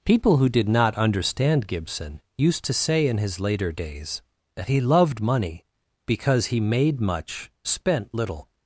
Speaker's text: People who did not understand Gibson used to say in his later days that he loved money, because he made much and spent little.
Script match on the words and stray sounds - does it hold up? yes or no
no